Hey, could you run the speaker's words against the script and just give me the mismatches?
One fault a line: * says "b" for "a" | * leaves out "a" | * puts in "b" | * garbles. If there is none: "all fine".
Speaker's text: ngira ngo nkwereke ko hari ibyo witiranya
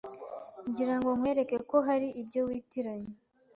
all fine